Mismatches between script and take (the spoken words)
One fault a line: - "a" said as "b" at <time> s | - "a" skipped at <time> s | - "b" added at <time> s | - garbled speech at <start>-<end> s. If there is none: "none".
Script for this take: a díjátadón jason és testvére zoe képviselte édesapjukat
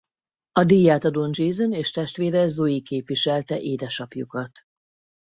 none